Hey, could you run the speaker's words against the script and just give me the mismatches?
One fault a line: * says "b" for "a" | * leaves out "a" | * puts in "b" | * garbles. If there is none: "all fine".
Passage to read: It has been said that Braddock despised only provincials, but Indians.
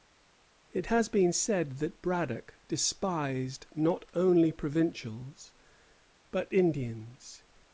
* puts in "not"